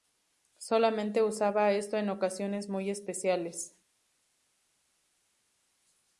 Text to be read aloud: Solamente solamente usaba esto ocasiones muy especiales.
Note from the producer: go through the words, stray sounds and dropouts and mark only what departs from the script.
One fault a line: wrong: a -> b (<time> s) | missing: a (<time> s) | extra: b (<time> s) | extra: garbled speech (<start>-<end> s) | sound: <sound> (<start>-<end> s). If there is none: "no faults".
missing: solamente (1.2 s)
extra: en (1.9 s)